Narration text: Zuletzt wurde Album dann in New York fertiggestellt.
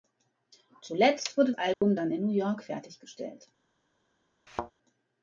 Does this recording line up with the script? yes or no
yes